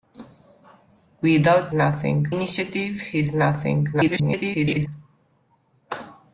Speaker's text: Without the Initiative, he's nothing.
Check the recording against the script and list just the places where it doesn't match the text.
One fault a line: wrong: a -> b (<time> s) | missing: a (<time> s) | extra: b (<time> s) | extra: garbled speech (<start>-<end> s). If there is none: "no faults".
wrong: the -> nothing (1.7 s)
extra: garbled speech (3.9-4.9 s)